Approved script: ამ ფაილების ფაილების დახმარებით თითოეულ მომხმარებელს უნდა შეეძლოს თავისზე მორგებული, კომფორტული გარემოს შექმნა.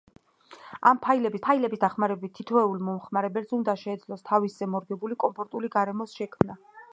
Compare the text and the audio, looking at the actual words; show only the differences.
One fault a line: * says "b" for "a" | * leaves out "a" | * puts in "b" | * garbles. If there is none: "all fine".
all fine